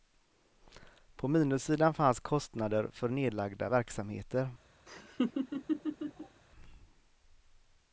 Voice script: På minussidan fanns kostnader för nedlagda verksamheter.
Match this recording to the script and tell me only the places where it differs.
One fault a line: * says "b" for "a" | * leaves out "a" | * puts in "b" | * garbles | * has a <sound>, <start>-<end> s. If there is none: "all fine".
* has a laugh, 4.9-6.4 s